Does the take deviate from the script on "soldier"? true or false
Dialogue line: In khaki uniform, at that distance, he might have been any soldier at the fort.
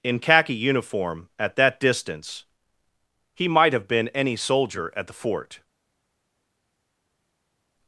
false